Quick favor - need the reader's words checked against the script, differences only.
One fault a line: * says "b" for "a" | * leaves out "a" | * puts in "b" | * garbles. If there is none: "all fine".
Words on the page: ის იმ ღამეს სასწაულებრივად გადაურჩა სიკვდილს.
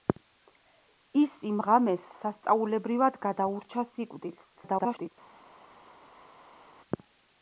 * garbles